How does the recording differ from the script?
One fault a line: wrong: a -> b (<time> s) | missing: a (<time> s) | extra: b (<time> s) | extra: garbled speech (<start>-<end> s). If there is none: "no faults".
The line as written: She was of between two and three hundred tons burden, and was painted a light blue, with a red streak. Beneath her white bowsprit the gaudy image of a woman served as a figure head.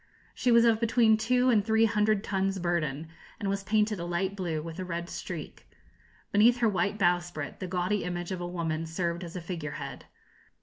no faults